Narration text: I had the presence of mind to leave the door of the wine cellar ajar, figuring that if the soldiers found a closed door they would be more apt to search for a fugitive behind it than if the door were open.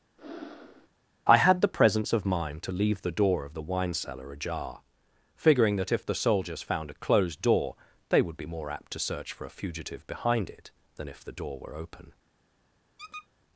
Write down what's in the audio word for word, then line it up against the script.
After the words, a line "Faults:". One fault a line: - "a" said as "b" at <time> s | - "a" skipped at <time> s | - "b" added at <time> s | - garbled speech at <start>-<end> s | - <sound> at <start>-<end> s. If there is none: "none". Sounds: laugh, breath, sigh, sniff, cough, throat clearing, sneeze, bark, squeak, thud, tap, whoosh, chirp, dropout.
I had the presence of mind to leave the door of the wine cellar ajar, figuring that if the soldiers found a closed door they would be more apt to search for a fugitive behind it than if the door were open.
Faults:
- breath at 0.2-0.9 s
- squeak at 13.0-13.3 s